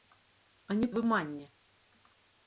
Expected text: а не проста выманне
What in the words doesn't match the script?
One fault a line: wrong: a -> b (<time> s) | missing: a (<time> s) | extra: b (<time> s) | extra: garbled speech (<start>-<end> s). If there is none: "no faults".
missing: проста (0.9 s)